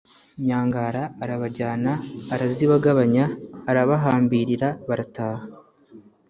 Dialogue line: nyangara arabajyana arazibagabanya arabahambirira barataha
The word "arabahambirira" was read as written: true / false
true